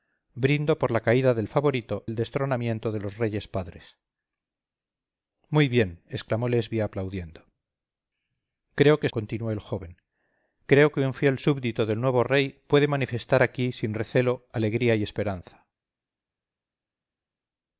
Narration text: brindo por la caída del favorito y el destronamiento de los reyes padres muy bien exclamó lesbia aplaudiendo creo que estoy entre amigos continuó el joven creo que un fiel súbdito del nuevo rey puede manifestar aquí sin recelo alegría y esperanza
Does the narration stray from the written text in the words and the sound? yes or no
yes